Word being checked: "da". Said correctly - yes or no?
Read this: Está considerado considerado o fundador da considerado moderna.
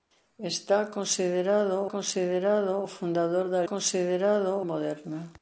yes